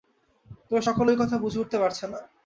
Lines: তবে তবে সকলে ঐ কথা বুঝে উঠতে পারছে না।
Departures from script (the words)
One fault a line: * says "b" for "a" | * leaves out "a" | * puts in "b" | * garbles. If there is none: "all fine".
* leaves out "তবে"